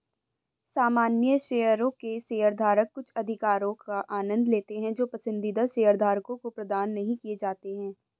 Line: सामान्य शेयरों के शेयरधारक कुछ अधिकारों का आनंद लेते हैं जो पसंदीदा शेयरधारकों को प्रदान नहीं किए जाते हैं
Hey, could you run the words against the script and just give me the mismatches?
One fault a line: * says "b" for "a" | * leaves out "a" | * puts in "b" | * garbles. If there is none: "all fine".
all fine